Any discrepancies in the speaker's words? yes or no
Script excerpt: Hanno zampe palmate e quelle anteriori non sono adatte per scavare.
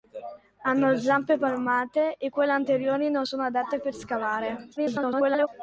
yes